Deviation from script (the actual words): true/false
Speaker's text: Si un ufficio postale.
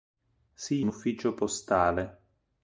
false